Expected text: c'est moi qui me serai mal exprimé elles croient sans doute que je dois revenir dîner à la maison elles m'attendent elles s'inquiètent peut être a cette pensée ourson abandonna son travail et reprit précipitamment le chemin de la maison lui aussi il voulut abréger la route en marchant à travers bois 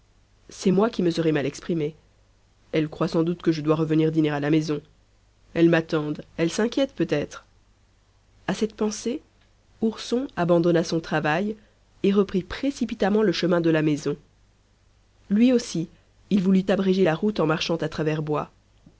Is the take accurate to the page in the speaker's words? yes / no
yes